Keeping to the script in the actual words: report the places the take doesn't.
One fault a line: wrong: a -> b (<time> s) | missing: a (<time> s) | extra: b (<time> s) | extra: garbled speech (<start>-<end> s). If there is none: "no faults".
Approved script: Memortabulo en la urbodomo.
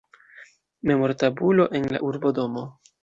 no faults